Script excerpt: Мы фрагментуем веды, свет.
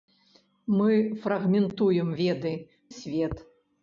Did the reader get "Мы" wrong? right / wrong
right